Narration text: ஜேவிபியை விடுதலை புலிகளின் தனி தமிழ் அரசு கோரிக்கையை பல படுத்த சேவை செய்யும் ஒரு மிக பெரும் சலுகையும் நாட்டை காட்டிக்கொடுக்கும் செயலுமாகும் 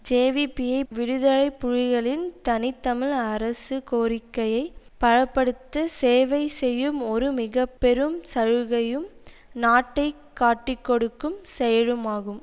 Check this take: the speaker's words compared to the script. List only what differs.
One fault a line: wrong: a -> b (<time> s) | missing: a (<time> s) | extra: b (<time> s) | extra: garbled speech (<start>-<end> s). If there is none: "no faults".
no faults